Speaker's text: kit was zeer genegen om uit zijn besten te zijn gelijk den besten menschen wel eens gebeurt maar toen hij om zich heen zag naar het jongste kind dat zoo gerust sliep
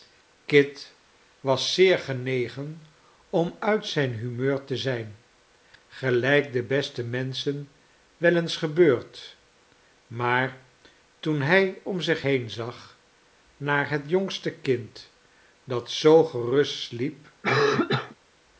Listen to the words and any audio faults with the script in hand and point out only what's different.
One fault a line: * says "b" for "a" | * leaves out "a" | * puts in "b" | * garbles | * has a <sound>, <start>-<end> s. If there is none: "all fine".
* says "humeur" for "besten"
* has a cough, 17.4-18.2 s